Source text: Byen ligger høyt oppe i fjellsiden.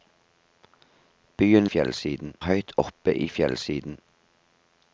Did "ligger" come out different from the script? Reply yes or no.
yes